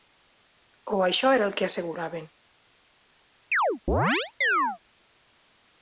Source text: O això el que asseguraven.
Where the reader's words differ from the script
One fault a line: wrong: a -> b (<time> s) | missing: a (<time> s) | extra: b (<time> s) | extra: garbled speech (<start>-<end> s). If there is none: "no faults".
extra: era (1.4 s)